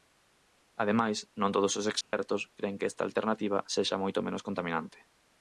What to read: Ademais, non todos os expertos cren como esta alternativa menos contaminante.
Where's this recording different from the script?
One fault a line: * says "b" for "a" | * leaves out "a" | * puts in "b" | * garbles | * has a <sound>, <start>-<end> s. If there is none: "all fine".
* has a dropout, 2.0-2.1 s
* says "que" for "como"
* puts in "sexa moito"